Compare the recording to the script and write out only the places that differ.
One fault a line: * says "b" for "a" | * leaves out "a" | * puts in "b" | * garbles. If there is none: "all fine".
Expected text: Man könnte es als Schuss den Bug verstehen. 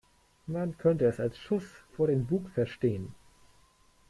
* puts in "vor"